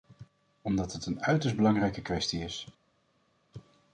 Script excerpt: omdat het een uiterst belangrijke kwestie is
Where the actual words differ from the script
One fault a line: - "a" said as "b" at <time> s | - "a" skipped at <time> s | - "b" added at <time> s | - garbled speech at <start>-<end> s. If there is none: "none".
none